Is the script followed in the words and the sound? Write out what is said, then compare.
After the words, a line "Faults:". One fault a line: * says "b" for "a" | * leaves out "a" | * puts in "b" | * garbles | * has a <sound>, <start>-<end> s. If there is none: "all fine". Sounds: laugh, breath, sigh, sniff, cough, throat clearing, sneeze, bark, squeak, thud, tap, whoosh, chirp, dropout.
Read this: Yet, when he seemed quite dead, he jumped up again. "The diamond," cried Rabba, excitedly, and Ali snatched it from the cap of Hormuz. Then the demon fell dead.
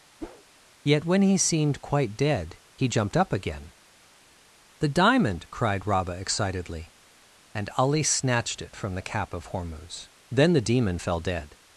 Yet, when he seemed quite dead, he jumped up again. "The diamond," cried Rabba, excitedly, and Ali snatched it from the cap of Hormuz. Then the demon fell dead.
Faults:
* has a whoosh, 0.2-0.4 s